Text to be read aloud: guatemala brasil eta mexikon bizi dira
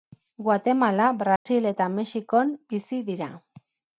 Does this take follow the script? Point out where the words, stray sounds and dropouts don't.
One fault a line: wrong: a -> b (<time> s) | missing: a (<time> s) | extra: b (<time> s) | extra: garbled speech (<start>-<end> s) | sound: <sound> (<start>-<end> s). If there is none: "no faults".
sound: dropout (1.4-1.5 s)